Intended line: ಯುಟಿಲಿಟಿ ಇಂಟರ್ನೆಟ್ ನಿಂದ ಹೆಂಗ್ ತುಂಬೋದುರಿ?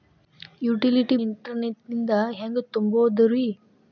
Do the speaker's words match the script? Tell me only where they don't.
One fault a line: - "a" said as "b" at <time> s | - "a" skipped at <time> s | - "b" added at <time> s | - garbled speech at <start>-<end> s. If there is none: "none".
none